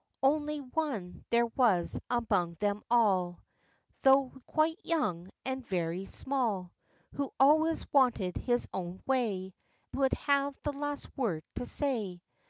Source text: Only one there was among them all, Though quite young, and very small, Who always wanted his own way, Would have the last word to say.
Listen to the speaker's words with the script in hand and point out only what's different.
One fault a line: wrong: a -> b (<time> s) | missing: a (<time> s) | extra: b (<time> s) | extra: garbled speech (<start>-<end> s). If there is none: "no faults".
no faults